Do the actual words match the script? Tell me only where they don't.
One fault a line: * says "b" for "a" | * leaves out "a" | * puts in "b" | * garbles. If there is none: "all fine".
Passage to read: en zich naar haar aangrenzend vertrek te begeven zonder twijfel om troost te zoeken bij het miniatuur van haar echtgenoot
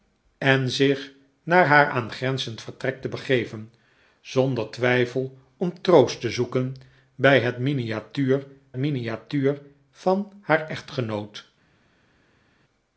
* puts in "miniatuur"